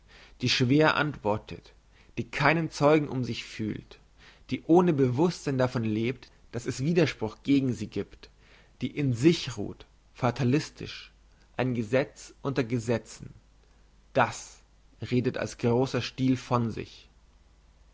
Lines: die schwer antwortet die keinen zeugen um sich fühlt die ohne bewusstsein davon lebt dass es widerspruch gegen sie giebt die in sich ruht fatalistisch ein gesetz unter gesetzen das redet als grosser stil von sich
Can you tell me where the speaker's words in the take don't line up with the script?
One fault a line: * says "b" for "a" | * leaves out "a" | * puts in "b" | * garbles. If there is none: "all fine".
all fine